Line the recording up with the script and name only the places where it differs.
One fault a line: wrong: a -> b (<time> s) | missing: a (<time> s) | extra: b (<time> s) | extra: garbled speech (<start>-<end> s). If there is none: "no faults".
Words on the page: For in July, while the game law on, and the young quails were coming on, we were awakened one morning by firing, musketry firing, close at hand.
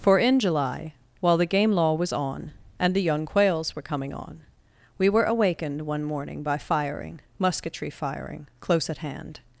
extra: was (1.9 s)